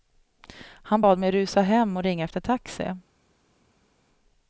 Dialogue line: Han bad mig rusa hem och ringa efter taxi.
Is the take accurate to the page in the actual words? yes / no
yes